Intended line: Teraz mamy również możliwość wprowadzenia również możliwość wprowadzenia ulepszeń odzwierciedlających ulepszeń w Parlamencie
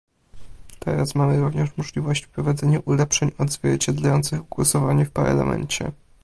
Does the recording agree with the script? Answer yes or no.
no